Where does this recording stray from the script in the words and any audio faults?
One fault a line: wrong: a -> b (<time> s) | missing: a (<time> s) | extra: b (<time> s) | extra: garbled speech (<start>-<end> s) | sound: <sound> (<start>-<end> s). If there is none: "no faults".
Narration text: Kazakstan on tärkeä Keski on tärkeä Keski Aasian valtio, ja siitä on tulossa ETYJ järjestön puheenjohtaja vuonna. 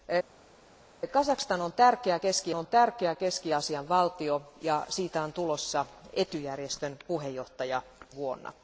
no faults